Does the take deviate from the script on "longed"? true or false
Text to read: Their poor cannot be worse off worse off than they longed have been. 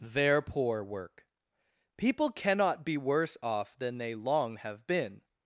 true